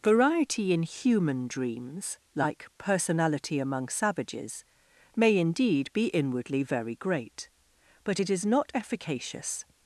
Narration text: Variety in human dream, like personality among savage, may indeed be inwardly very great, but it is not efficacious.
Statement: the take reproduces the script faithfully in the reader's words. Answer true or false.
false